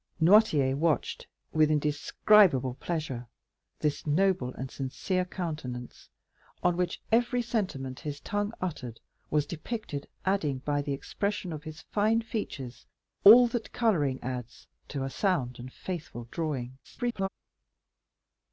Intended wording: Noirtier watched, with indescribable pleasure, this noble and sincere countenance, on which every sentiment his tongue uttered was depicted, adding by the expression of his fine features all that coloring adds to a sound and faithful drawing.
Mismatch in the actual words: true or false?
true